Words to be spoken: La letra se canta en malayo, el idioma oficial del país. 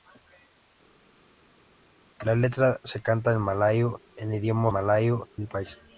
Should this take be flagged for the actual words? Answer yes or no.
yes